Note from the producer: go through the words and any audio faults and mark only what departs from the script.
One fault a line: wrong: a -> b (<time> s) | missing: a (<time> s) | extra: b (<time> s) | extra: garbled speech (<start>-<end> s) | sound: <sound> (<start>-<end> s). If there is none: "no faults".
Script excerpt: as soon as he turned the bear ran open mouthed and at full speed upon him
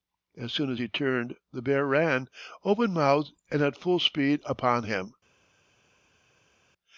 no faults